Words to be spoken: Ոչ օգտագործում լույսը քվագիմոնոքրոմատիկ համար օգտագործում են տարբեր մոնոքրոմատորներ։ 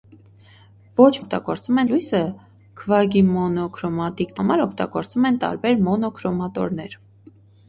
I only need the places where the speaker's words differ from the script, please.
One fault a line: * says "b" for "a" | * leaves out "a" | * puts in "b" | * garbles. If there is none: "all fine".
all fine